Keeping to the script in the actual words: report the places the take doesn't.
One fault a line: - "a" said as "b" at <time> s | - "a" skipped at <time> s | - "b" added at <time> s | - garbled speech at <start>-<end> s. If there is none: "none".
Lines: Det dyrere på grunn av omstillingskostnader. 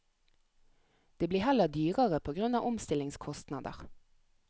- "blir heller" added at 1.3 s